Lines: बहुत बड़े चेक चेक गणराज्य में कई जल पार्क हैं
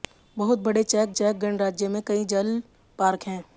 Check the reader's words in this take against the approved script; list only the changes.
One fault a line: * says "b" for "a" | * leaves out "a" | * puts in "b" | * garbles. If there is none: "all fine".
all fine